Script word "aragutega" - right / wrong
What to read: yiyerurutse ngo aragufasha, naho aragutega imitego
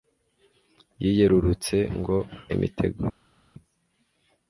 wrong